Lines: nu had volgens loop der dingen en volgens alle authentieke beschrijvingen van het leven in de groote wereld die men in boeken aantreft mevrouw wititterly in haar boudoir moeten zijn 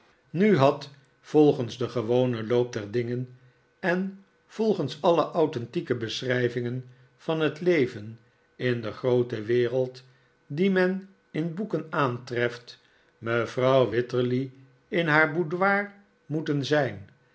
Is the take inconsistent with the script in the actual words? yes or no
yes